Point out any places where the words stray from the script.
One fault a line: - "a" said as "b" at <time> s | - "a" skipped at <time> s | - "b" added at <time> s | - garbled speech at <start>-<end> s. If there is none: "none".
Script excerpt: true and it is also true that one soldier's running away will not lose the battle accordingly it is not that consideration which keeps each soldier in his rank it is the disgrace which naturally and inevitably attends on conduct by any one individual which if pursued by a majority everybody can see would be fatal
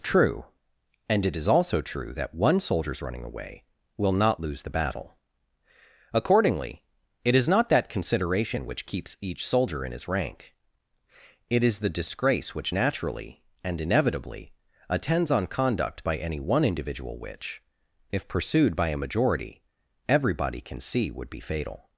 none